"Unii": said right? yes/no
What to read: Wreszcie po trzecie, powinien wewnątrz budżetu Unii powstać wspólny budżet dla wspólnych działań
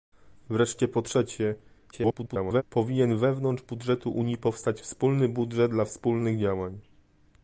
yes